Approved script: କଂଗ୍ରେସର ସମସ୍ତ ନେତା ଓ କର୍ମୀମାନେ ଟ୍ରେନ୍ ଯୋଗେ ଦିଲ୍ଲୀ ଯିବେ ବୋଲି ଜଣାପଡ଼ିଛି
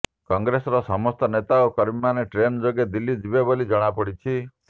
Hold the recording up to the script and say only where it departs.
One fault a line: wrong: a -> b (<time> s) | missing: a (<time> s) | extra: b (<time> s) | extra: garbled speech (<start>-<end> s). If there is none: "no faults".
no faults